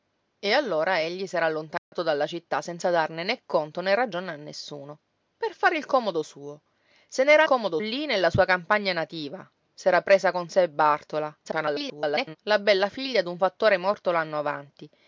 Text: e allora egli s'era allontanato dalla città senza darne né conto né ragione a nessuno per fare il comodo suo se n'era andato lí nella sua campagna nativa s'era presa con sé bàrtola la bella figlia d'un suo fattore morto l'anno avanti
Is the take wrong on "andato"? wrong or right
wrong